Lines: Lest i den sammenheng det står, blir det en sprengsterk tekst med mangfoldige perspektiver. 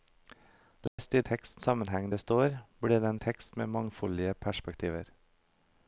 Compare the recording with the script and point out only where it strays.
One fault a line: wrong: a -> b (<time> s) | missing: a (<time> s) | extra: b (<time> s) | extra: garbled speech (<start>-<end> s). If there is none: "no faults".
wrong: den -> tekst (1.2 s)
missing: sprengsterk (3.2 s)